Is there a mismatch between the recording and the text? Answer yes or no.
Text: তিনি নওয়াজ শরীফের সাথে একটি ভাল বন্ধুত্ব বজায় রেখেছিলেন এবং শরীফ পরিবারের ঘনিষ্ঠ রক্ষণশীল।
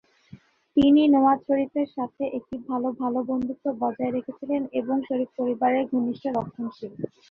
yes